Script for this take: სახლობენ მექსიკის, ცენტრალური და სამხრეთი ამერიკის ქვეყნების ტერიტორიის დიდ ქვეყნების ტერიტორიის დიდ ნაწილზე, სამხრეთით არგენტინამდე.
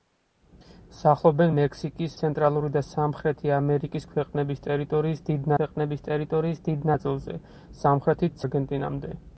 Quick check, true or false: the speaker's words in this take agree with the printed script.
true